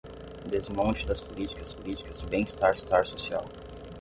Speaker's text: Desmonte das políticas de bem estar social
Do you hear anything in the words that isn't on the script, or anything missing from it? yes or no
yes